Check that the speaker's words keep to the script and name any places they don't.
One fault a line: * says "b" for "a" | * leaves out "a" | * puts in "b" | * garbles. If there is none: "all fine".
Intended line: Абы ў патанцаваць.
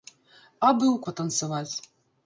all fine